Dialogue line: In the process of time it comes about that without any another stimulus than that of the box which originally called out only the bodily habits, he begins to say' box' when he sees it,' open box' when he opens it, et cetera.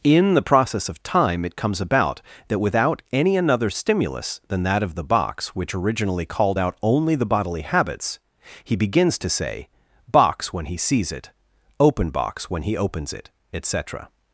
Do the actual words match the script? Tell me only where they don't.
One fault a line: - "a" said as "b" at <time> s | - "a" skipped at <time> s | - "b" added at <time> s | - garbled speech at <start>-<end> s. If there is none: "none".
none